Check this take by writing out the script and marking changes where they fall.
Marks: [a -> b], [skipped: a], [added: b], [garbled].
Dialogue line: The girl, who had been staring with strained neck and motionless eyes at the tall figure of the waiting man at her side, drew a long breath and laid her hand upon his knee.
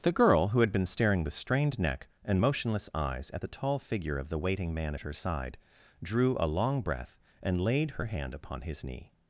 The girl, who had been staring with strained neck and motionless eyes at the tall figure of the waiting man at her side, drew a long breath and laid her hand upon his knee.